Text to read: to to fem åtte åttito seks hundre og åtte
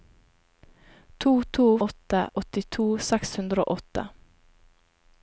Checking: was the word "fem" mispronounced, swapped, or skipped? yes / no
yes